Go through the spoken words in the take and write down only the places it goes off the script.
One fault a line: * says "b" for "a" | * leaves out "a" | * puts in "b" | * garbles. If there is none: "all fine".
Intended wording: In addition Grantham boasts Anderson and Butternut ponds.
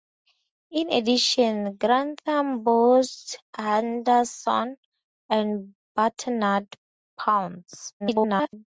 * garbles